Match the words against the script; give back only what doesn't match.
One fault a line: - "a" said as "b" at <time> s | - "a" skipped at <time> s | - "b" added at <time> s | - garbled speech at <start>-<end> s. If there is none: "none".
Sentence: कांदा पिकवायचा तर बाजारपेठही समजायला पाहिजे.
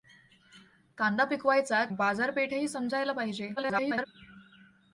- "तर" skipped at 1.8 s
- garbled speech at 3.6-4.1 s